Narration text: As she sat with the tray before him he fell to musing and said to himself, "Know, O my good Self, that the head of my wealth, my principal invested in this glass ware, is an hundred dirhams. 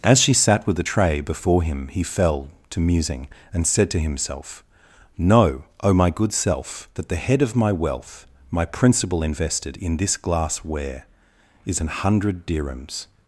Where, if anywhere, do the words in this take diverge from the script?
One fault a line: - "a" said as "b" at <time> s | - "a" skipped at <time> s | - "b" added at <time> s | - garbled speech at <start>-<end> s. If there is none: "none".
none